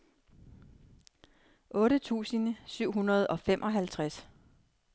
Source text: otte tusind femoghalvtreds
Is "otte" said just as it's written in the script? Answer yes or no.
yes